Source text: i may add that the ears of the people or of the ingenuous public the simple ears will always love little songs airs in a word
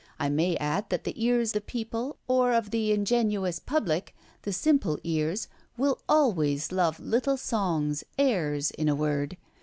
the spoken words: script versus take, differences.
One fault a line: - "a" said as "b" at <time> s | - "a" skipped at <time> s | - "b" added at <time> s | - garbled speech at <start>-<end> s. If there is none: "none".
- "of" skipped at 1.5 s